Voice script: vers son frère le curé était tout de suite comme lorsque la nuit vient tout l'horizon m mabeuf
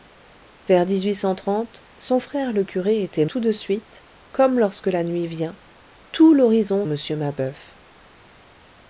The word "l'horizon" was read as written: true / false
true